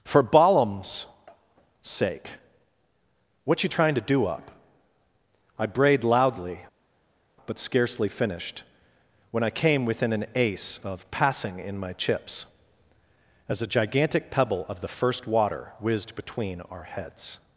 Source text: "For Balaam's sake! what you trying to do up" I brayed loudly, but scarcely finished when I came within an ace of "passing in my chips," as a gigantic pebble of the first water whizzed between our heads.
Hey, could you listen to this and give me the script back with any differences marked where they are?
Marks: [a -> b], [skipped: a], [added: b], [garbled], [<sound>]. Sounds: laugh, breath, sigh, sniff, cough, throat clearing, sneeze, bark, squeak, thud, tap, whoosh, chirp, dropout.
"For Balaam's sake! what you trying to do up" I brayed loudly, but scarcely finished when I came within an ace of "passing in my chips," as a gigantic pebble of the first water whizzed between our heads.